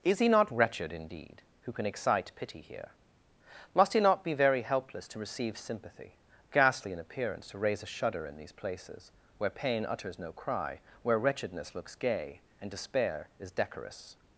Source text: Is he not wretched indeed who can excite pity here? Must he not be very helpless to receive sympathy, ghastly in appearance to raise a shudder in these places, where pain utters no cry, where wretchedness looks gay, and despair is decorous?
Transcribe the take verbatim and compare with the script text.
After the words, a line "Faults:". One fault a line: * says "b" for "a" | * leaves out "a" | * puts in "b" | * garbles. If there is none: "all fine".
Is he not wretched indeed who can excite pity here? Must he not be very helpless to receive sympathy, ghastly in appearance to raise a shudder in these places, where pain utters no cry, where wretchedness looks gay, and despair is decorous?
Faults:
all fine